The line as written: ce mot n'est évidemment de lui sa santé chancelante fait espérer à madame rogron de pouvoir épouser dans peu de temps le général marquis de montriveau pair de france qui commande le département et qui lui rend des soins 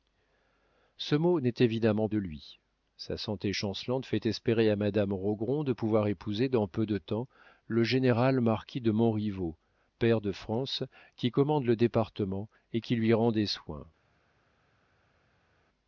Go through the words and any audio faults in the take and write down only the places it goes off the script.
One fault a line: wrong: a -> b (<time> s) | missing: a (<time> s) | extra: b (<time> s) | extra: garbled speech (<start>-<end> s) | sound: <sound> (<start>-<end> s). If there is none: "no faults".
no faults